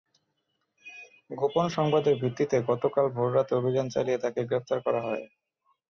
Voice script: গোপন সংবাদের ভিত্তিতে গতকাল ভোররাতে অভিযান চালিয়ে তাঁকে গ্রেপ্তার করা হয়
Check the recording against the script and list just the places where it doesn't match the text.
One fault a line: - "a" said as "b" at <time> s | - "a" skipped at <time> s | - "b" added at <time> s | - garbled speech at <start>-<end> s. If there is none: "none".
none